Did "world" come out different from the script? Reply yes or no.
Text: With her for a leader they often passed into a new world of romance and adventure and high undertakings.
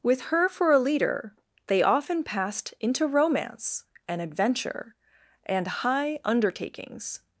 yes